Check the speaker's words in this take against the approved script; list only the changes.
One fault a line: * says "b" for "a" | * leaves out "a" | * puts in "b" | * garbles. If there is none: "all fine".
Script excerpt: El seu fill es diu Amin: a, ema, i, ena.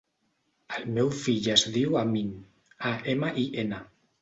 * says "meu" for "seu"